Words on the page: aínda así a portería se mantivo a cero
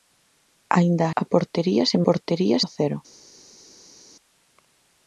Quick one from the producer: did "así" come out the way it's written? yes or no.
no